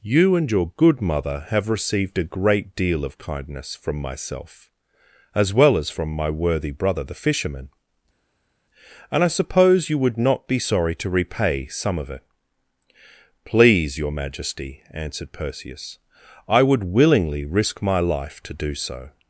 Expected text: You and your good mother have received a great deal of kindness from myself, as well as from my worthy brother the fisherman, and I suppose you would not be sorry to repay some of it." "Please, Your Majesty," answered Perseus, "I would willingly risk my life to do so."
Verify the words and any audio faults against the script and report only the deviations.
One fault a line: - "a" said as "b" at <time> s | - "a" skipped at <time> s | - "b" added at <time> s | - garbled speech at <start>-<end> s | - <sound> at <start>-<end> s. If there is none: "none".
none